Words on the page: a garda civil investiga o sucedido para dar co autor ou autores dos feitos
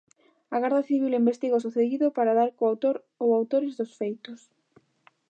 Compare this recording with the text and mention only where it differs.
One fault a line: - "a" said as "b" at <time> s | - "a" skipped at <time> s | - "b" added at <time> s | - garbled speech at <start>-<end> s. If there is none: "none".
none